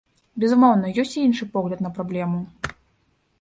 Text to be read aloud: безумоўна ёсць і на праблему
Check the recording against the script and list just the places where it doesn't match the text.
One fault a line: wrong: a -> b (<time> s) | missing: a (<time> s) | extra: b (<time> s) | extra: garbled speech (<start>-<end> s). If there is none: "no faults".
extra: іншы погляд (1.3 s)